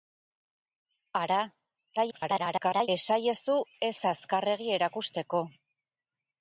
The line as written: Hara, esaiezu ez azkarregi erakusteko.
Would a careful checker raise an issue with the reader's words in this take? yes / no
yes